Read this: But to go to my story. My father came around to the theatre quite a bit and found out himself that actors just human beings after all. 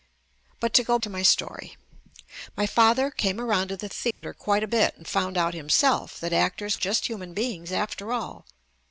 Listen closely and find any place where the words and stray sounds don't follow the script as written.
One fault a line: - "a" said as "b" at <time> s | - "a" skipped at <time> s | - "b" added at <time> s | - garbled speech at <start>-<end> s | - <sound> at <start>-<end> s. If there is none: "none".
- dropout at 4.1-4.2 s